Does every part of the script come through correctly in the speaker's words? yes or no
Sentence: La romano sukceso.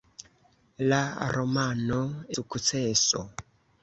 yes